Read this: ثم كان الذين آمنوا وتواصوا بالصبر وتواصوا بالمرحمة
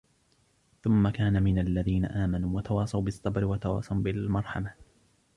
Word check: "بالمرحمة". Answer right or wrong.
right